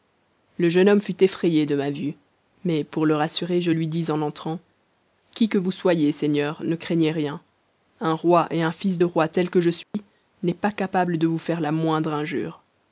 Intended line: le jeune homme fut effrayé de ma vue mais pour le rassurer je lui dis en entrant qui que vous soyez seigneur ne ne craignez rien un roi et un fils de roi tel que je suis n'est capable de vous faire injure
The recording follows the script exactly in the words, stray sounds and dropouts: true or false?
false